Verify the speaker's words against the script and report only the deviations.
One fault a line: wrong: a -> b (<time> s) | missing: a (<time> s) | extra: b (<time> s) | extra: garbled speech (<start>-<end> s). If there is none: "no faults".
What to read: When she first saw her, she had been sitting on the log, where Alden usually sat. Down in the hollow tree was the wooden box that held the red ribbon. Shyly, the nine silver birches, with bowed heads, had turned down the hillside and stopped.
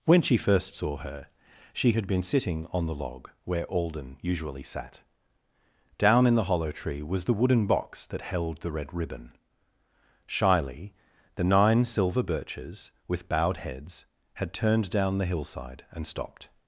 no faults